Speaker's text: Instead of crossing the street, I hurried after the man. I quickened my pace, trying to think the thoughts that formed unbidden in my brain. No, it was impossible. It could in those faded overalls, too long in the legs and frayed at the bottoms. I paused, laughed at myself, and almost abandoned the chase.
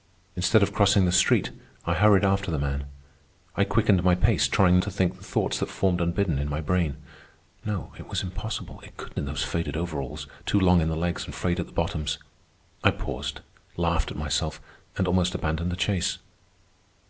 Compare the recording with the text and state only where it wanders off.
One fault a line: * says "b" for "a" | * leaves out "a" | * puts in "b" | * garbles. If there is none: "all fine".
all fine